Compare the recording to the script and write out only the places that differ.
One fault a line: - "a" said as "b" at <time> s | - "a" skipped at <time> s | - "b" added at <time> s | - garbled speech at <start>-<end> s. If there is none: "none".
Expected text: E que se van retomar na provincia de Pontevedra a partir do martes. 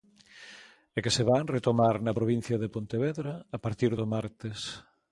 none